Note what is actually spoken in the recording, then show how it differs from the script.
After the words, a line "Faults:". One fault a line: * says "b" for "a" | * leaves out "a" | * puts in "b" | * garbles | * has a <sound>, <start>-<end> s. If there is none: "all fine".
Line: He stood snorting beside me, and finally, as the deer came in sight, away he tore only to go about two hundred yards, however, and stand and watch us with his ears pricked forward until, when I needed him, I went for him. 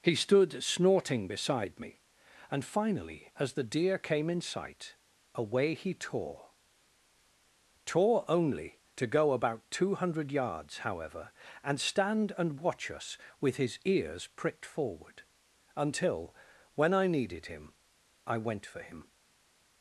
He stood snorting beside me, and finally, as the deer came in sight, away he tore tore only to go about two hundred yards, however, and stand and watch us with his ears pricked forward until, when I needed him, I went for him.
Faults:
* puts in "tore"